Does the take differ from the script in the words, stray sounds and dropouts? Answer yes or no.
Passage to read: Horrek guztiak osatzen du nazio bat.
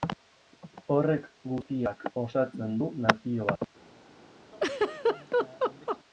yes